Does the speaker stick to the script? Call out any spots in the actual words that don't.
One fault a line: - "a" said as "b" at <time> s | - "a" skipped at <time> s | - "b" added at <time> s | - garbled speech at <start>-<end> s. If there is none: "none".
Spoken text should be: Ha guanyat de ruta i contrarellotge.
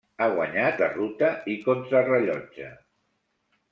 none